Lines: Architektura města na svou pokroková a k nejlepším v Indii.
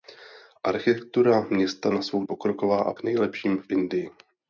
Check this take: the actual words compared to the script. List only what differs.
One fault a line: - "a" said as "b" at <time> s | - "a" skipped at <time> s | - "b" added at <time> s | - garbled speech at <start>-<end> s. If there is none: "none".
none